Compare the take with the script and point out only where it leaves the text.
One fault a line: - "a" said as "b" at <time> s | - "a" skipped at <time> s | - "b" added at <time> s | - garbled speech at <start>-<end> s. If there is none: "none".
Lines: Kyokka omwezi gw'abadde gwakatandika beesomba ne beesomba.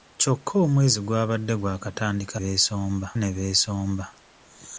none